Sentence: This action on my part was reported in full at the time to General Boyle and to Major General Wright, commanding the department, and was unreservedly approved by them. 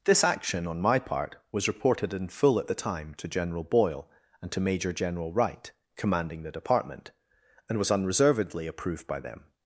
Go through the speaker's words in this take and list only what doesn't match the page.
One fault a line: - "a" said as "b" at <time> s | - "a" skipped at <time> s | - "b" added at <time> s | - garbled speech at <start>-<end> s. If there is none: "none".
none